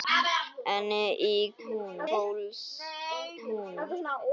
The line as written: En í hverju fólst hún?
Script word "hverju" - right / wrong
wrong